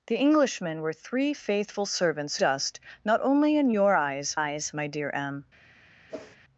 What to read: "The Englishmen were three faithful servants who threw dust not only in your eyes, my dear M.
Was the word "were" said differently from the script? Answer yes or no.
no